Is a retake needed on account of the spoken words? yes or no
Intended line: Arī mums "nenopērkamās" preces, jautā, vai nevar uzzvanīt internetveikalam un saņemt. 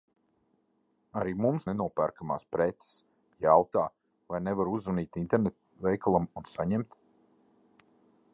no